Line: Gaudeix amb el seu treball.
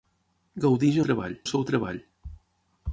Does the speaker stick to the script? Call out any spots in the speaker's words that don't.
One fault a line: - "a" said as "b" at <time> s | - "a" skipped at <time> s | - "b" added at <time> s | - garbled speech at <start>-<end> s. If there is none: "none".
- "amb" said as "treball" at 1.1 s